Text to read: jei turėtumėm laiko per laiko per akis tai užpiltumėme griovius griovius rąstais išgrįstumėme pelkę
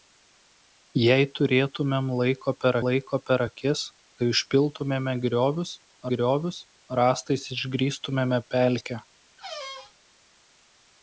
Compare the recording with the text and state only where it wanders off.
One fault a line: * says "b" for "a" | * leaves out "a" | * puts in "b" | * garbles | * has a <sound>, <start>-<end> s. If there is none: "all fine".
* has a squeak, 9.4-10.0 s